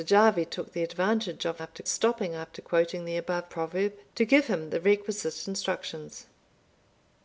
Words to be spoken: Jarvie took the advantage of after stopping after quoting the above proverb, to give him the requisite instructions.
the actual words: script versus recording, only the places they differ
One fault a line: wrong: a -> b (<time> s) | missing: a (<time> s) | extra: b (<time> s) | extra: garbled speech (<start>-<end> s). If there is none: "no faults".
no faults